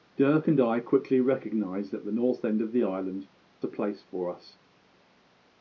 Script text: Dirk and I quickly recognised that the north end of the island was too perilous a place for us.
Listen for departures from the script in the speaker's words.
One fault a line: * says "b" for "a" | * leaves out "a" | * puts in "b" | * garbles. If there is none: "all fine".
* leaves out "was too perilous"